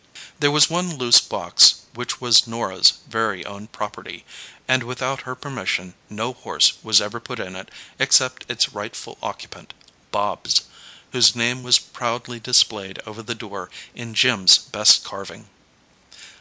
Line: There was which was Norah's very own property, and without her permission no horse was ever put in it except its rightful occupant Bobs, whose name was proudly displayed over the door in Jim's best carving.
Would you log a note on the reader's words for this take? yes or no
yes